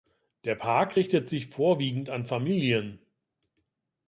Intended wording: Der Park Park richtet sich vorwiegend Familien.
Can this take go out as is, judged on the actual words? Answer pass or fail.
fail